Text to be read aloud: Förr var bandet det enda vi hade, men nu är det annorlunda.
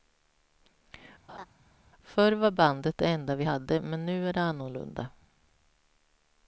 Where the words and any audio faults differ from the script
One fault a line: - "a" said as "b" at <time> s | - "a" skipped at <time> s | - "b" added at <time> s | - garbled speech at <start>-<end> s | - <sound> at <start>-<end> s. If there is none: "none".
- laugh at 1.3-1.5 s